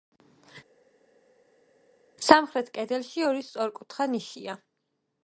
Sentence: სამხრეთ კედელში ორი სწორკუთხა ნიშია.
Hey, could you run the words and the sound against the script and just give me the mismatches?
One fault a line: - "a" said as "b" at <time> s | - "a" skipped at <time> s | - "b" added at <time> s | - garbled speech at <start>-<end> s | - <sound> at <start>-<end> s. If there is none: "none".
none